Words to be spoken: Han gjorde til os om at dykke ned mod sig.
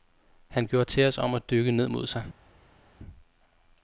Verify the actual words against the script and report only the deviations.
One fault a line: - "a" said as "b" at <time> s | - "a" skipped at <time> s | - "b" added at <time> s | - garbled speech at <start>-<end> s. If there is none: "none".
none